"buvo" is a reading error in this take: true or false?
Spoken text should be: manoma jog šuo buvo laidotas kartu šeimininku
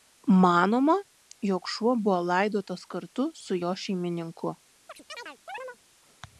false